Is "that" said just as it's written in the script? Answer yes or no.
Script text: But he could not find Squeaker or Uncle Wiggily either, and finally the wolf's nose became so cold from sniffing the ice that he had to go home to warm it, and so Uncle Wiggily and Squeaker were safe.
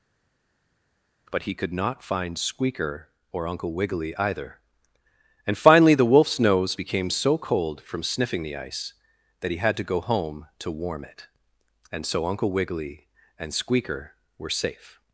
yes